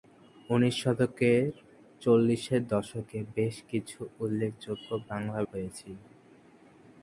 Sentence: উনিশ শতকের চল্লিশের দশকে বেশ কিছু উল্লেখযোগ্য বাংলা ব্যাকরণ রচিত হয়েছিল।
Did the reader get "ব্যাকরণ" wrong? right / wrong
wrong